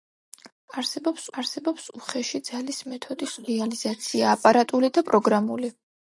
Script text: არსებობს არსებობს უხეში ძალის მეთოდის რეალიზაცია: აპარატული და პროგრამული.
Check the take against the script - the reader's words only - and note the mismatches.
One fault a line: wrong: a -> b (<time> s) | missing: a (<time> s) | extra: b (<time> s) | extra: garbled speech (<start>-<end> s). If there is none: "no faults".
no faults